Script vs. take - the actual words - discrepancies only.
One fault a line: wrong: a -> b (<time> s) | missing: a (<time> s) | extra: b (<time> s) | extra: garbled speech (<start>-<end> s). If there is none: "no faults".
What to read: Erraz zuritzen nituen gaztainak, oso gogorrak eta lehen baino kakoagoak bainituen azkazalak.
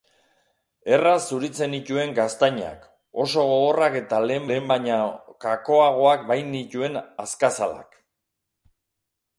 extra: lehen (4.5 s)